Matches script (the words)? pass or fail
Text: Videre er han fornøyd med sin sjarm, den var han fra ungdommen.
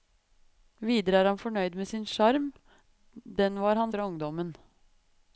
pass